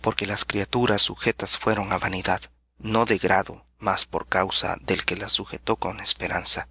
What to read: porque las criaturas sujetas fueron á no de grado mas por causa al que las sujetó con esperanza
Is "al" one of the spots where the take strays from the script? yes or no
yes